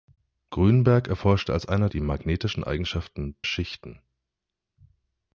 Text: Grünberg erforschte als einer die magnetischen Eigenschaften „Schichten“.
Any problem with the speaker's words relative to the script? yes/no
no